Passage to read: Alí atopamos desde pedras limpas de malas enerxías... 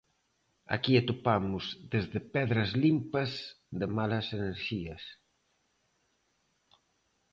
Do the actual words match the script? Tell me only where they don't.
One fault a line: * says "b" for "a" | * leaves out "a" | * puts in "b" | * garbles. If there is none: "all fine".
* says "Aquí" for "Alí"